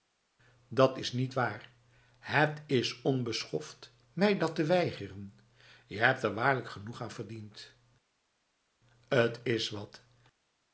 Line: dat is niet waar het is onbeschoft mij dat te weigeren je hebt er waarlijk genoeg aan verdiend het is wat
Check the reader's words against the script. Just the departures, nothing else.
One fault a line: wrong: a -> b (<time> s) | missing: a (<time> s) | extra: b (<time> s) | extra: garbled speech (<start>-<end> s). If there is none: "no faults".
no faults